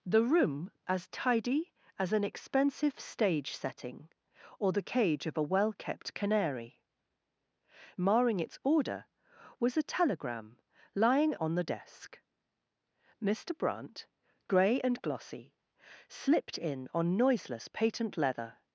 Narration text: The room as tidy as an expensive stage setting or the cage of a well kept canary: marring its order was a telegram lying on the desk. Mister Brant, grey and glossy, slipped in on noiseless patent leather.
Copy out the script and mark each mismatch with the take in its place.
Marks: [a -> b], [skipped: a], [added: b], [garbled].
The room as tidy as an expensive stage setting or the cage of a well kept canary: marring its order was a telegram lying on the desk. Mister Brant, grey and glossy, slipped in on noiseless patent leather.